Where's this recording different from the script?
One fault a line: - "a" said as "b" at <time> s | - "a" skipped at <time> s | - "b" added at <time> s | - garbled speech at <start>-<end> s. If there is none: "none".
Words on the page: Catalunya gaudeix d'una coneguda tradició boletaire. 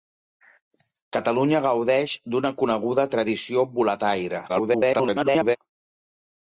- garbled speech at 4.5-5.6 s